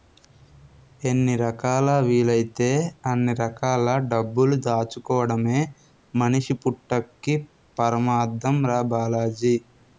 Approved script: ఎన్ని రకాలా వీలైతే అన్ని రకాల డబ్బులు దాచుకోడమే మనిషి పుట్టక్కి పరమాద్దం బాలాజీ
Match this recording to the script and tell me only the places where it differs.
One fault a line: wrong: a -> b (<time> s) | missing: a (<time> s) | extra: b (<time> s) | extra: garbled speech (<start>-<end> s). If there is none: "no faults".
extra: రా (8.7 s)